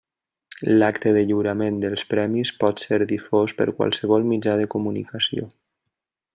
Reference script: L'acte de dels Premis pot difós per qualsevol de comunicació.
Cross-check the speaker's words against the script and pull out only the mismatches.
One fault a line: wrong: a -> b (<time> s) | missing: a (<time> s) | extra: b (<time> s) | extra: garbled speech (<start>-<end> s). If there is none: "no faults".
extra: lliurament (1.3 s)
extra: ser (2.9 s)
extra: mitjà (4.3 s)